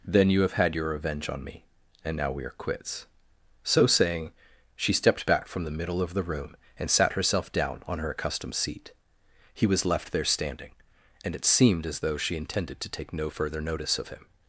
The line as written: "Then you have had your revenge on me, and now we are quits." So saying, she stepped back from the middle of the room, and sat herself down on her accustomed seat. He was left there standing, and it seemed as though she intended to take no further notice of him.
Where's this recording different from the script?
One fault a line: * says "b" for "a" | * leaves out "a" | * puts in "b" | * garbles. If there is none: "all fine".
all fine